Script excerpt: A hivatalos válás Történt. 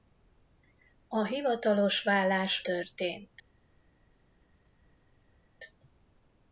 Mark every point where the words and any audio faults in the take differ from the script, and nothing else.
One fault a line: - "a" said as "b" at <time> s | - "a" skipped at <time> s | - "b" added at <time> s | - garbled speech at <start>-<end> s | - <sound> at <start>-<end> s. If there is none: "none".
none